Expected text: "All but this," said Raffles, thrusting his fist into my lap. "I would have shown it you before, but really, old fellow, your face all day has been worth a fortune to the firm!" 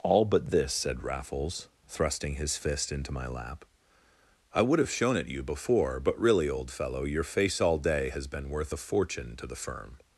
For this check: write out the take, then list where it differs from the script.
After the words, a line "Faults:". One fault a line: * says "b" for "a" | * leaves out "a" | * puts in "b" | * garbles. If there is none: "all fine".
"All but this," said Raffles, thrusting his fist into my lap. "I would have shown it you before, but really, old fellow, your face all day has been worth a fortune to the firm!"
Faults:
all fine